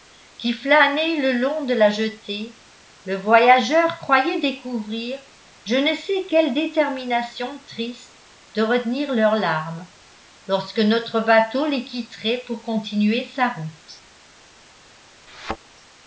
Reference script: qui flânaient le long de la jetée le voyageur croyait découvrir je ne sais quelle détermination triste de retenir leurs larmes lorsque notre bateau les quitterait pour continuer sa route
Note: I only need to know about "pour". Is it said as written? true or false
true